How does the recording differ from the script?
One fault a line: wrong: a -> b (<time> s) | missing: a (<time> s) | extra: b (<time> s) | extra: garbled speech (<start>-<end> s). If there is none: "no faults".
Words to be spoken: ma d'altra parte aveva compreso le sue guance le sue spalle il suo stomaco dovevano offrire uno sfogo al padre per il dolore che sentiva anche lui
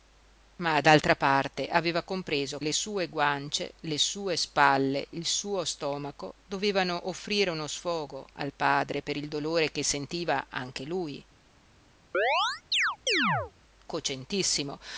no faults